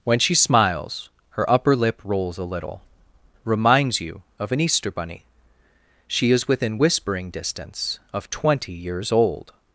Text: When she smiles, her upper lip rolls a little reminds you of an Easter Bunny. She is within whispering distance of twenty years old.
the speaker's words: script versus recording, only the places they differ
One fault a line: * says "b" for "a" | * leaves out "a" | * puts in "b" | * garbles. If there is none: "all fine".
all fine